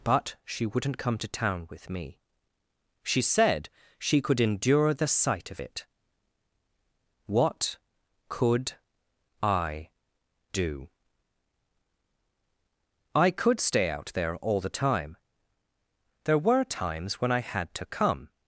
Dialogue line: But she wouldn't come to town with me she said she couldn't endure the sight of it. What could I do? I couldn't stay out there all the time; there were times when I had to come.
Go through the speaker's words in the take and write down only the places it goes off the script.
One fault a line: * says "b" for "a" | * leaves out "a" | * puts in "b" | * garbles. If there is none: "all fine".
* says "could" for "couldn't"
* says "could" for "couldn't"